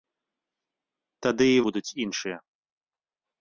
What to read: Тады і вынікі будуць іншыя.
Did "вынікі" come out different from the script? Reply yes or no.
yes